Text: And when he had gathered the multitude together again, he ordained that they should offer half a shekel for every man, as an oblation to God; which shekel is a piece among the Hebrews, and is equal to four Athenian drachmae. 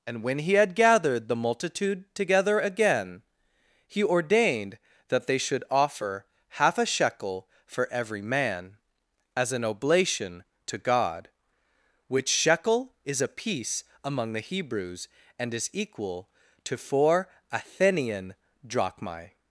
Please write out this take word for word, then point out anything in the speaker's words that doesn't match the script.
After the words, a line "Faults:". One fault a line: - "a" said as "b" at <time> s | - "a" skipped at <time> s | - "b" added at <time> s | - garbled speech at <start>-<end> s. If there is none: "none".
And when he had gathered the multitude together again, he ordained that they should offer half a shekel for every man, as an oblation to God; which shekel is a piece among the Hebrews, and is equal to four Athenian drachmae.
Faults:
none